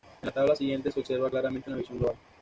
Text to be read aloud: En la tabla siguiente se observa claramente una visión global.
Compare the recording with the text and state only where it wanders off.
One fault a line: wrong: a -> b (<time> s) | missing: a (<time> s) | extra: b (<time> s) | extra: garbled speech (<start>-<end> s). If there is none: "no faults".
no faults